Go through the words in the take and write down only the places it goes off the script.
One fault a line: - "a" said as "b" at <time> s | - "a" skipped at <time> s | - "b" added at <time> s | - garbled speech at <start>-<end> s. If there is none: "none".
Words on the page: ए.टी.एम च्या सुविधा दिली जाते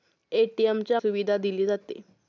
none